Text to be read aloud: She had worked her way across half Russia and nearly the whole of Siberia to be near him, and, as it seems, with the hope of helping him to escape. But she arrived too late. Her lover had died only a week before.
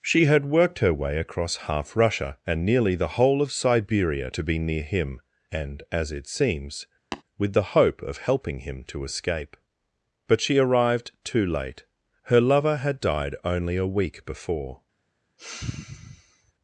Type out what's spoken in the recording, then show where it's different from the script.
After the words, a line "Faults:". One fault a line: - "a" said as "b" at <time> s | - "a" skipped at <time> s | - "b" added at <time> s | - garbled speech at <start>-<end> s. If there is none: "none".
She had worked her way across half Russia and nearly the whole of Siberia to be near him, and, as it seems, with the hope of helping him to escape. But she arrived too late. Her lover had died only a week before.
Faults:
none